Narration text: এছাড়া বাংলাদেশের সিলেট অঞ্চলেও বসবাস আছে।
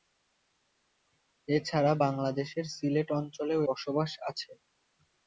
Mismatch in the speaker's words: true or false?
false